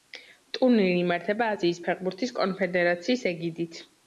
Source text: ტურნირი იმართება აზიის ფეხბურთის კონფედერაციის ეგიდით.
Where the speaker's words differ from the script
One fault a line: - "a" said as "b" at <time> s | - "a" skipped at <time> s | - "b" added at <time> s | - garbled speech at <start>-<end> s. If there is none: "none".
none